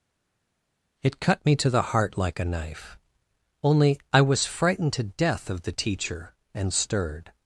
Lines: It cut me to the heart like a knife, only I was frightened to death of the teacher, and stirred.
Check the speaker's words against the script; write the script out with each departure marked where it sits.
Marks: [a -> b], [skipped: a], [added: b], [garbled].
It cut me to the heart like a knife, only I was frightened to death of the teacher, and stirred.